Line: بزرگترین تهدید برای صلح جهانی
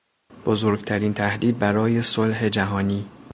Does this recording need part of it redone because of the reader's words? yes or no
no